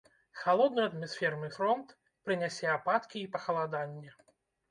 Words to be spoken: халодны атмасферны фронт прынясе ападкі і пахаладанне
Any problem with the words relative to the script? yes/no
no